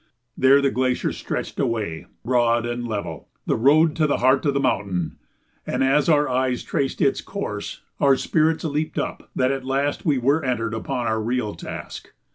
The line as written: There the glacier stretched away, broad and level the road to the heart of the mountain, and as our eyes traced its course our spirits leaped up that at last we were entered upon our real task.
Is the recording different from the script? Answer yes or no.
no